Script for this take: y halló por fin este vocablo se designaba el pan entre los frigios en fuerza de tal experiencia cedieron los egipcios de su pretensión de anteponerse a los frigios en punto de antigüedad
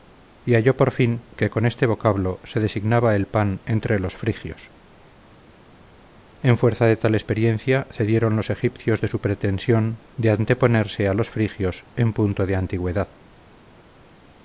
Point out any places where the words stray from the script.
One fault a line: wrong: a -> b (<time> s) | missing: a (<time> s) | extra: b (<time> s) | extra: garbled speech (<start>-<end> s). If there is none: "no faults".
extra: que con (1.4 s)